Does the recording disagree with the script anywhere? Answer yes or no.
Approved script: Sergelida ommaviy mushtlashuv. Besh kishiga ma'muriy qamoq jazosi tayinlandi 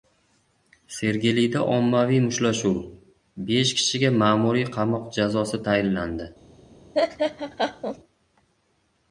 no